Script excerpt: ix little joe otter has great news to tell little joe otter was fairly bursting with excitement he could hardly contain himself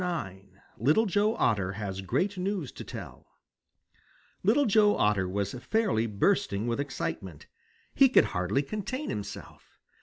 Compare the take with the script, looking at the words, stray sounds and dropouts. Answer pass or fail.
pass